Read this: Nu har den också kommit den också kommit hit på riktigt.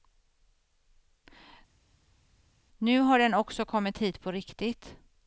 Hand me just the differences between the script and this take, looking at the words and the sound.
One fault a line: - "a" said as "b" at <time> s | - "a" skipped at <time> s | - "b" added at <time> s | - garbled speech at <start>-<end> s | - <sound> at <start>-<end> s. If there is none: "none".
- "den också kommit" skipped at 4.0 s